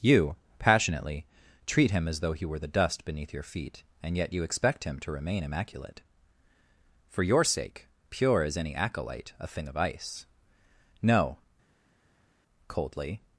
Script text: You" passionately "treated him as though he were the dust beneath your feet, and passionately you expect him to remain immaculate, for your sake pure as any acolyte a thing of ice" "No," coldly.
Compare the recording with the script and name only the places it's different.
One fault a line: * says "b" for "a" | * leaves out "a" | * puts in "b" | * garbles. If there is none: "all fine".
* says "treat" for "treated"
* says "yet" for "passionately"